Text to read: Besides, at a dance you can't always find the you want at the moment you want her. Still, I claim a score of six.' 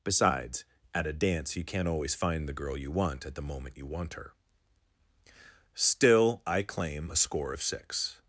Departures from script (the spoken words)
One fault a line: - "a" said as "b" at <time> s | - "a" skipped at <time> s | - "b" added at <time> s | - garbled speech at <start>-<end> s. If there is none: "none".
- "girl" added at 2.5 s